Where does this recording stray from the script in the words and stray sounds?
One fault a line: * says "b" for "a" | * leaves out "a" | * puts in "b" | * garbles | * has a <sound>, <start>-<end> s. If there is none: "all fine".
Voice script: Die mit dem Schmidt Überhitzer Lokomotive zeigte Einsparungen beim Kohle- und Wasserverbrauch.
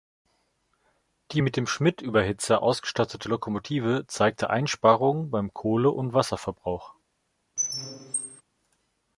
* puts in "ausgestattete"
* has a squeak, 7.6-8.4 s